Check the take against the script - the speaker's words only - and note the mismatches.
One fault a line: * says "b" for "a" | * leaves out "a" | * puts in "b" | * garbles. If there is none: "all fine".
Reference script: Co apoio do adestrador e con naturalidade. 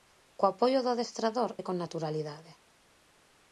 all fine